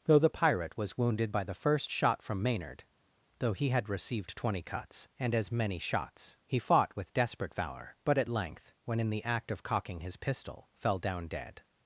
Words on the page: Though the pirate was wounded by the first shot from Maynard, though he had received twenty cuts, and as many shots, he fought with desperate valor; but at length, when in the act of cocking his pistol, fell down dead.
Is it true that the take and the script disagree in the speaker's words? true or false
false